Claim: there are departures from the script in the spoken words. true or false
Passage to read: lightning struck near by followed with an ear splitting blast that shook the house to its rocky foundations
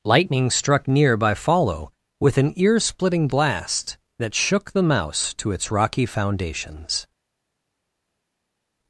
true